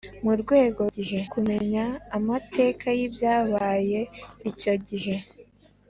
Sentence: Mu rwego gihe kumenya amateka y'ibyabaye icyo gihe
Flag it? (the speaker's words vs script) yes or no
no